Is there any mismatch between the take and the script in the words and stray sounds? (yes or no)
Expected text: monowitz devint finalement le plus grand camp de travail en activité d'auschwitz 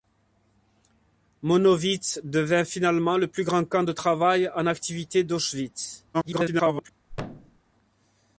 yes